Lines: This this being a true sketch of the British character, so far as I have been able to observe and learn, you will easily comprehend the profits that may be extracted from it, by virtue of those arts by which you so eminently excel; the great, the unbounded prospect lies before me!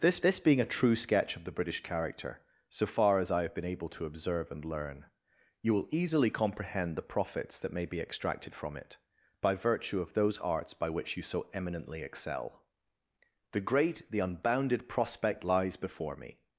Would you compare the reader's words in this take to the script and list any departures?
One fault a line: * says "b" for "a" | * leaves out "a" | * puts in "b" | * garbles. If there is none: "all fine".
all fine